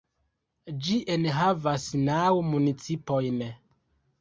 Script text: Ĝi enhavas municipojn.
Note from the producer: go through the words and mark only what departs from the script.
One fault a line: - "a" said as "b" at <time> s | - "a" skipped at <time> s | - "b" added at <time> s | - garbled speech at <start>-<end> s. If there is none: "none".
- "naŭ" added at 2.0 s